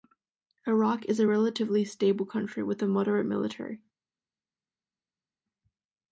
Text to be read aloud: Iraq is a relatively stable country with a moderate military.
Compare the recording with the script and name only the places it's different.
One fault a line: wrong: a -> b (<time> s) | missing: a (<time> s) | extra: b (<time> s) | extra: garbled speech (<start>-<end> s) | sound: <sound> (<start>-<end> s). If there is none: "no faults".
no faults